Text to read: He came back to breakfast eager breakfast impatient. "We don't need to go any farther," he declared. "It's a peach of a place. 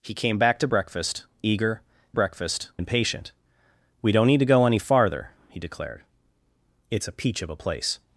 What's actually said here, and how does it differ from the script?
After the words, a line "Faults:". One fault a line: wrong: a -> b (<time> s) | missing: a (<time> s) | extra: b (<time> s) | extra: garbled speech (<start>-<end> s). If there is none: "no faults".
He came back to breakfast eager breakfast impatient. "We don't need to go any farther," he declared. "It's a peach of a place.
Faults:
no faults